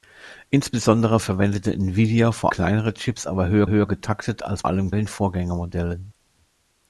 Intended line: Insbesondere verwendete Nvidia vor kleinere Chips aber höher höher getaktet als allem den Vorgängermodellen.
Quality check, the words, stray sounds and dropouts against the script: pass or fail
pass